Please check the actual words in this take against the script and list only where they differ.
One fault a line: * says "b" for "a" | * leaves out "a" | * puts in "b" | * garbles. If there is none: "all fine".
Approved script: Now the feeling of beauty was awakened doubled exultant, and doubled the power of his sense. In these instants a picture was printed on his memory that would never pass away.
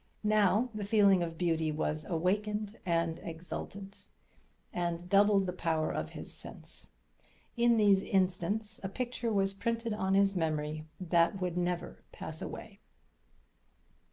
* says "and" for "doubled"